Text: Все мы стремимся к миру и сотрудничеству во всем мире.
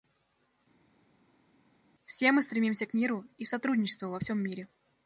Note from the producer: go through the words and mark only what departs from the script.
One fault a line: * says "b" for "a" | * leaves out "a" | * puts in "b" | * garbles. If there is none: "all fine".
all fine